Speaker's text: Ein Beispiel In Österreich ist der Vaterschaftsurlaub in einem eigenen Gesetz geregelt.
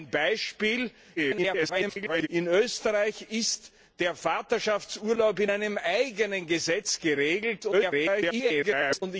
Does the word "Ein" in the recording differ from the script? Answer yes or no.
no